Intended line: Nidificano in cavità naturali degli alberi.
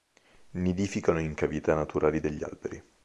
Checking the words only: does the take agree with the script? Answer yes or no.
yes